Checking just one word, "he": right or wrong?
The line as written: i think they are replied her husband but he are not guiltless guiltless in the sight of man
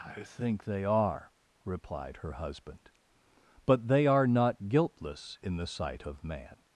wrong